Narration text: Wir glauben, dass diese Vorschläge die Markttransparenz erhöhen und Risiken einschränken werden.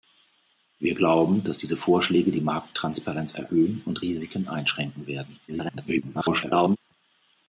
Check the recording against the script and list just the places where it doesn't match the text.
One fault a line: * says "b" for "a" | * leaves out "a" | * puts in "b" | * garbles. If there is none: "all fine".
* garbles